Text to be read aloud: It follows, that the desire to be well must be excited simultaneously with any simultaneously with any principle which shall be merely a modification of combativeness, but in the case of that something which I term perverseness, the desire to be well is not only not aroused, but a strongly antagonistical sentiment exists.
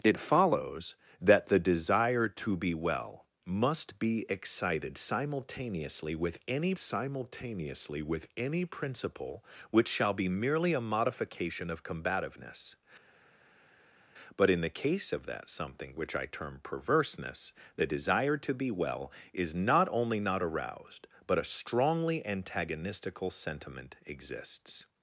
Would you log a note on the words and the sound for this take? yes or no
no